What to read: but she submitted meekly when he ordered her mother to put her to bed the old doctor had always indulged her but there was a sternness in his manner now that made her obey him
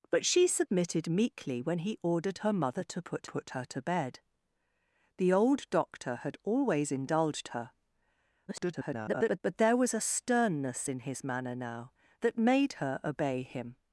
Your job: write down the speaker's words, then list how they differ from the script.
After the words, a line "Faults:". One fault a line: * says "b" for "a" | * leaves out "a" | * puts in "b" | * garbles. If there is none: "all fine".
but she submitted meekly when he ordered her mother to put put her to bed the old doctor had always indulged her [garbled] but there was a sternness in his manner now that made her obey him
Faults:
* puts in "put"
* garbles